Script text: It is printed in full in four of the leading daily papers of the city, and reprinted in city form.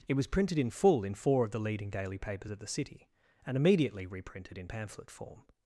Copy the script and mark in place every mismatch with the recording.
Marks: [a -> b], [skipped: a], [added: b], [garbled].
It [is -> was] printed in full in four of the leading daily papers of the city, and [added: immediately] reprinted in [city -> pamphlet] form.